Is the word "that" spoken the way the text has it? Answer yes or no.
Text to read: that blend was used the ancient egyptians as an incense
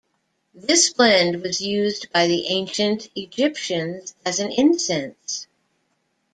no